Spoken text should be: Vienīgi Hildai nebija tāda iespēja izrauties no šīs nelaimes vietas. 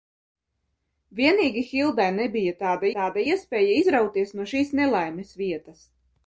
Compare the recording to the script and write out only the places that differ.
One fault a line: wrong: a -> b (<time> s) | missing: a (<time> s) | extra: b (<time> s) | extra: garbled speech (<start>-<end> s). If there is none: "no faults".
extra: tāda (3.0 s)